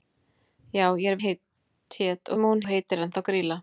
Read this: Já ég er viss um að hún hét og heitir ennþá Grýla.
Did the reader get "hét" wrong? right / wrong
wrong